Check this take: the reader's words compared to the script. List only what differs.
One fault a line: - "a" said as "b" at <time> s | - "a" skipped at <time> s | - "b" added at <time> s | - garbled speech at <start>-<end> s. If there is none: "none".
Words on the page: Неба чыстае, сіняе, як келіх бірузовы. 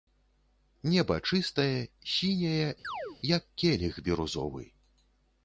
none